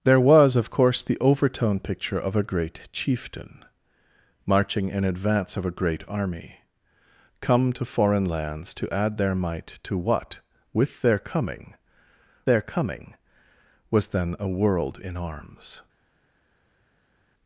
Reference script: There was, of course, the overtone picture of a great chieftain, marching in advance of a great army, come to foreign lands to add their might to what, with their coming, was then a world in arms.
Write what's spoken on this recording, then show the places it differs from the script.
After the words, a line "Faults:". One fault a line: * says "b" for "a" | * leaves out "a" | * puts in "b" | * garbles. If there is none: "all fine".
There was, of course, the overtone picture of a great chieftain, marching in advance of a great army, come to foreign lands to add their might to what, with their coming their coming, was then a world in arms.
Faults:
* puts in "their coming"